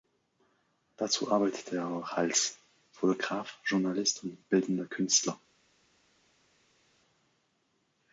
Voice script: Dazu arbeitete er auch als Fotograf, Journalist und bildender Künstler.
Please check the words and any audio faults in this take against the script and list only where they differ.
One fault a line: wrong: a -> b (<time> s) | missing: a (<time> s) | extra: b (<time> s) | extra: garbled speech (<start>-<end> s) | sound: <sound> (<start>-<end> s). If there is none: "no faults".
no faults